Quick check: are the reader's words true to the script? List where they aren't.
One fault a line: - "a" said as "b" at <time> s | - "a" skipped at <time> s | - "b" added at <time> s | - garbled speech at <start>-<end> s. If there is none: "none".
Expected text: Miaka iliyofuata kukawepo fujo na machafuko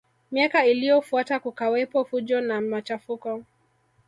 none